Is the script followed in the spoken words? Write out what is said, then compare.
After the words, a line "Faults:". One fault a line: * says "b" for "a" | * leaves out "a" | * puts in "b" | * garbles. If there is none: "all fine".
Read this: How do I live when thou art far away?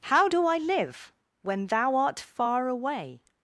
How do I live when thou art far away?
Faults:
all fine